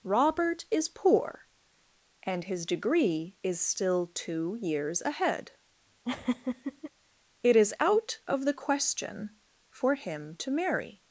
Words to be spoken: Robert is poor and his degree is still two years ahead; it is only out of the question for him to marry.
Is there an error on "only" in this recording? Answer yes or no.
yes